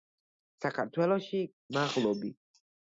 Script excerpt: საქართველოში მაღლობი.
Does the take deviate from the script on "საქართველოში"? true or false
false